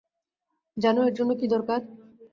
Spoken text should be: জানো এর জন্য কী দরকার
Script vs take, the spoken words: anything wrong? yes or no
no